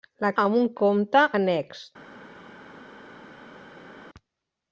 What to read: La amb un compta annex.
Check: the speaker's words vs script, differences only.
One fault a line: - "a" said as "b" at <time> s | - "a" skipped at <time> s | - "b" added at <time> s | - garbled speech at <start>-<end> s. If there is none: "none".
none